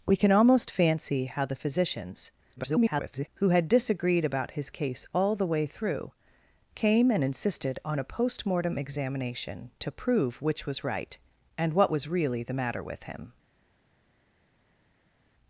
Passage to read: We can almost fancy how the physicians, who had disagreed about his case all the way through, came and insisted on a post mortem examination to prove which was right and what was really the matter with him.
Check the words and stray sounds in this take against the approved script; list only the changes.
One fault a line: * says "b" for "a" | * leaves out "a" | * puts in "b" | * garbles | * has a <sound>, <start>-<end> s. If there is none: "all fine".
* garbles